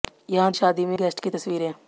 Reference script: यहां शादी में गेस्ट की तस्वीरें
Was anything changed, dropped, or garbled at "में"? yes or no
no